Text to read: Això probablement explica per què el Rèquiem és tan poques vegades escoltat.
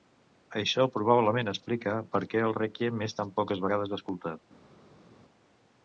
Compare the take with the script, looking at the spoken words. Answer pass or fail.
pass